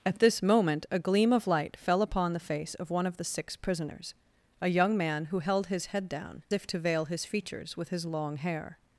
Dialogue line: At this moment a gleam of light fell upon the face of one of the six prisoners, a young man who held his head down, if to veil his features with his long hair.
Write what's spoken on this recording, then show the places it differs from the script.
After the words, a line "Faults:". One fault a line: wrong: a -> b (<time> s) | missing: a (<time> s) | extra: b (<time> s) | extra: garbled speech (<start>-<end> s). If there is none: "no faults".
At this moment a gleam of light fell upon the face of one of the six prisoners, a young man who held his head down, if to veil his features with his long hair.
Faults:
no faults